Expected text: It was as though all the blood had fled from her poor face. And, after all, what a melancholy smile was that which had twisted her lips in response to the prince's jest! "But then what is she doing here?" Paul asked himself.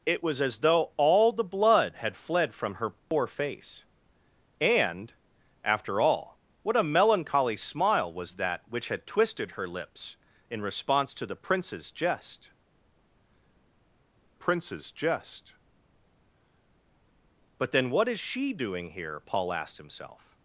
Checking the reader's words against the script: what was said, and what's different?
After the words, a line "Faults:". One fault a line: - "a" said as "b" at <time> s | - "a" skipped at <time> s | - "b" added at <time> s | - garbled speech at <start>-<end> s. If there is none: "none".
It was as though all the blood had fled from her poor face. And, after all, what a melancholy smile was that which had twisted her lips in response to the prince's jest prince's jest! "But then what is she doing here?" Paul asked himself.
Faults:
- "prince's jest" added at 14.3 s